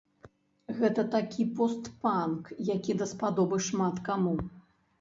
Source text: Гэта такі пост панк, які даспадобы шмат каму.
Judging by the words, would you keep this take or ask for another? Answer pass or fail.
pass